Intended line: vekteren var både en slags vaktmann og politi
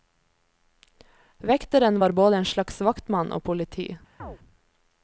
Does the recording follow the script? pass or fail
pass